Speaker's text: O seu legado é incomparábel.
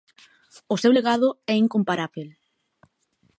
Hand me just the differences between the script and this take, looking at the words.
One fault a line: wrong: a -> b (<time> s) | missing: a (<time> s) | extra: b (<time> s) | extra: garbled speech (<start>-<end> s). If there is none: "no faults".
no faults